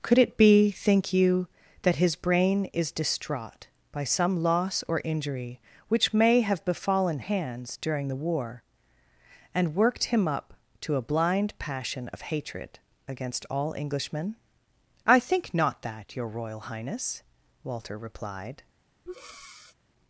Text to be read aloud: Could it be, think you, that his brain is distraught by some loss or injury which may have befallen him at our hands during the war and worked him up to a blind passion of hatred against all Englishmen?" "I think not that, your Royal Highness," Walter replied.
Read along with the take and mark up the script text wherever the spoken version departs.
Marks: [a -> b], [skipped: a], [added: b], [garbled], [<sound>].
Could it be, think you, that his brain is distraught by some loss or injury which may have befallen [skipped: him at our] hands during the war and worked him up to a blind passion of hatred against all Englishmen?" "I think not that, your Royal Highness," Walter replied. [breath]